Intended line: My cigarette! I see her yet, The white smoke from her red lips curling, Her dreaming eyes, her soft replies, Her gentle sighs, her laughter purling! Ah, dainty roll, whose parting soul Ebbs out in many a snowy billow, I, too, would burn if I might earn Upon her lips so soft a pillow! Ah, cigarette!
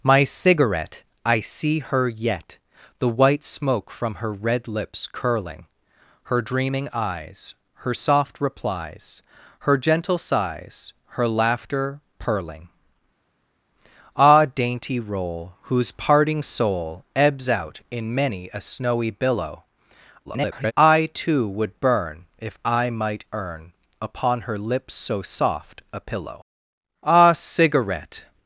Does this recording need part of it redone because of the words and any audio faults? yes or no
yes